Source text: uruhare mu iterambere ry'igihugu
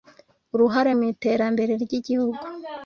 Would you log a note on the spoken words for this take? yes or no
no